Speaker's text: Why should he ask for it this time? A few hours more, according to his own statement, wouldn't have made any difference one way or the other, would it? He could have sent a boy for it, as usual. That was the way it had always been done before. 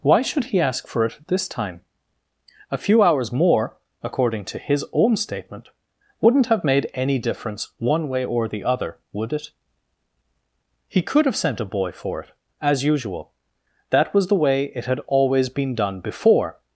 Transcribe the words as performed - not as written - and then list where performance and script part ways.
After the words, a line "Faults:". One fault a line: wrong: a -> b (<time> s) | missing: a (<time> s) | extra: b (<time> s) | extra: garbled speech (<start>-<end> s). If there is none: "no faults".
Why should he ask for it this time? A few hours more, according to his own statement, wouldn't have made any difference one way or the other, would it? He could have sent a boy for it, as usual. That was the way it had always been done before.
Faults:
no faults